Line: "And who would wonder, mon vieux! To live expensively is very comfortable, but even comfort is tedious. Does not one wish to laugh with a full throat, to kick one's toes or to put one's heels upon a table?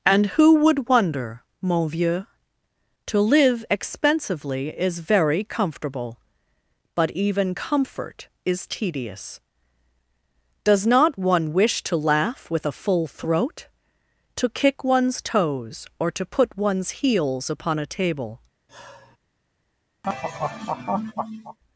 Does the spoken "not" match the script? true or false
true